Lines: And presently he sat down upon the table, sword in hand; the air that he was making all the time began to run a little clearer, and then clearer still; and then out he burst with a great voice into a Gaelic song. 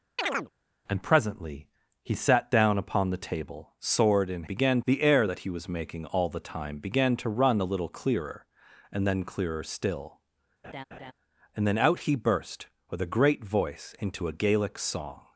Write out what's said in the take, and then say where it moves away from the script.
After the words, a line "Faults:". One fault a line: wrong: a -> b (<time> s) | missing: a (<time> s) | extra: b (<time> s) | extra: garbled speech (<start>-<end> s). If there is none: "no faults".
And presently he sat down upon the table, sword in began; the air that he was making all the time began to run a little clearer, and then clearer still; and then out he burst with a great voice into a Gaelic song.
Faults:
wrong: hand -> began (4.4 s)